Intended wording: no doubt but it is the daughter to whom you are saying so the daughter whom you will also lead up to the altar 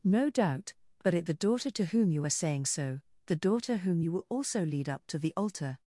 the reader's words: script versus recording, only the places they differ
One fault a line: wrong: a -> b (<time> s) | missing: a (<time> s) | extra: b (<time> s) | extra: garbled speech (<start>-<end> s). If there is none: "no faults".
missing: is (1.3 s)